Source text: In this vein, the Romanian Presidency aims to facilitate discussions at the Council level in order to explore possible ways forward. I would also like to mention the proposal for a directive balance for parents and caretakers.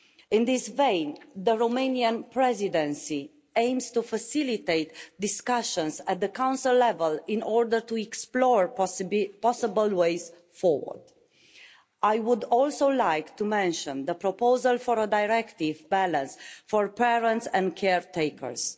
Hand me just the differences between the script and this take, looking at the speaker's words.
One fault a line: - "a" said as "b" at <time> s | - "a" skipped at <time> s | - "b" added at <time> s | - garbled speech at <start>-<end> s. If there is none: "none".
none